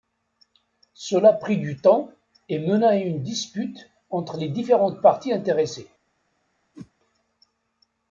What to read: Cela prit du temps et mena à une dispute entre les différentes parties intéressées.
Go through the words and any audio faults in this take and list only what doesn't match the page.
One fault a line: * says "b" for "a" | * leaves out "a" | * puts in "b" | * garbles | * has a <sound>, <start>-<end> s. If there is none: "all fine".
* has a whoosh, 6.7-6.9 s